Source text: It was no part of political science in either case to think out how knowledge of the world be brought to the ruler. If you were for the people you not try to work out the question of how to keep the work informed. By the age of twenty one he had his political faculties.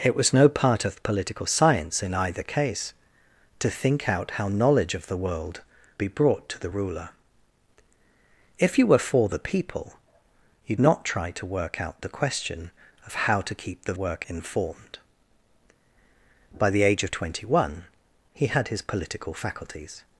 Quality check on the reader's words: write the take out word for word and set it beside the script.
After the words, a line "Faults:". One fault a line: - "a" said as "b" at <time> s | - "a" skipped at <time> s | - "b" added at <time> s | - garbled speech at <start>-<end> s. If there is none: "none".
It was no part of political science in either case to think out how knowledge of the world be brought to the ruler. If you were for the people you not try to work out the question of how to keep the work informed. By the age of twenty one he had his political faculties.
Faults:
none